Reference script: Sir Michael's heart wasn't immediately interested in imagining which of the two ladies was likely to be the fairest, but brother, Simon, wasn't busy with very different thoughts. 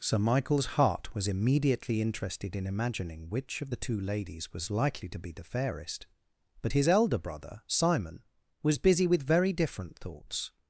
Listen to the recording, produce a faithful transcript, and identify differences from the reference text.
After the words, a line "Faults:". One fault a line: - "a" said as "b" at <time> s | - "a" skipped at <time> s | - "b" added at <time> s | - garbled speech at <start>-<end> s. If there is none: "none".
Sir Michael's heart was immediately interested in imagining which of the two ladies was likely to be the fairest, but his elder brother, Simon, was busy with very different thoughts.
Faults:
- "wasn't" said as "was" at 1.1 s
- "his elder" added at 6.7 s
- "wasn't" said as "was" at 8.6 s